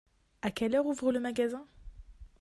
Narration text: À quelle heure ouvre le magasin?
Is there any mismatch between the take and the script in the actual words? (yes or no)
no